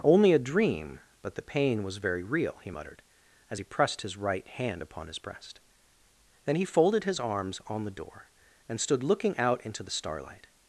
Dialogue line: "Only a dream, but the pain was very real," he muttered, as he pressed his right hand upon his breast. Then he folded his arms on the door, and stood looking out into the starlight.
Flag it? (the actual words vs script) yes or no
no